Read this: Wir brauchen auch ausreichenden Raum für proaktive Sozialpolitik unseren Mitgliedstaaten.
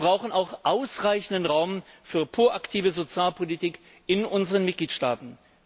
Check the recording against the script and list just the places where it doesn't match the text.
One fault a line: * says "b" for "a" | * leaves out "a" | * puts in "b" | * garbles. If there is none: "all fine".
* puts in "in"